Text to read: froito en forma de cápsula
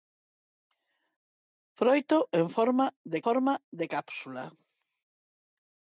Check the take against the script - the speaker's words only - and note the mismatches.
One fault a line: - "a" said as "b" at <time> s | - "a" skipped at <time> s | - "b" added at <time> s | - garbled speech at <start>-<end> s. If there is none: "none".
- "forma de" added at 3.2 s